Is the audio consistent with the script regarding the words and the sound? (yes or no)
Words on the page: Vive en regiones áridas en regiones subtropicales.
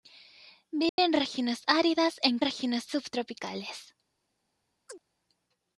no